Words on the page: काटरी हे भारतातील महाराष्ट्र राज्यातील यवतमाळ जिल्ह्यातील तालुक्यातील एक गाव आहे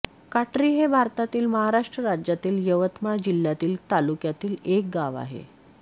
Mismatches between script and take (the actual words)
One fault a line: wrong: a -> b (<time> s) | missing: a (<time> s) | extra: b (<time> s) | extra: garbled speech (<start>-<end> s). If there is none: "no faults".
no faults